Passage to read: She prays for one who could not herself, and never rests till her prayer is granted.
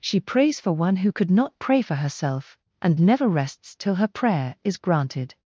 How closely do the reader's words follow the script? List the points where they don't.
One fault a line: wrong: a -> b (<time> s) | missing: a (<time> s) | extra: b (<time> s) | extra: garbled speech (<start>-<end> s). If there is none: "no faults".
extra: pray for (1.6 s)